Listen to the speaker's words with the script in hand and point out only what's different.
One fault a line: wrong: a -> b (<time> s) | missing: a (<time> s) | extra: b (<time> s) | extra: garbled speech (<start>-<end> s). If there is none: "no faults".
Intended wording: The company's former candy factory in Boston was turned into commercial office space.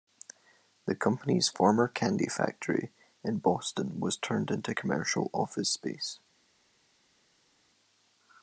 no faults